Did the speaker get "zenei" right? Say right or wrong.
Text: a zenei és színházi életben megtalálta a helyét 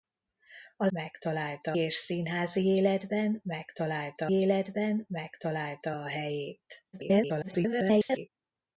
wrong